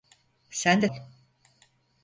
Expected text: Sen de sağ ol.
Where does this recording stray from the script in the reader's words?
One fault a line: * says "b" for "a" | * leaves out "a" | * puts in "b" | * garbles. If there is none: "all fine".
* leaves out "sağ"